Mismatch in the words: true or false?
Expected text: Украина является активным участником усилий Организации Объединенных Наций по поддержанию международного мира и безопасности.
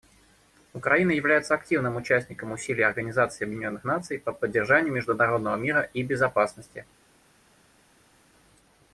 false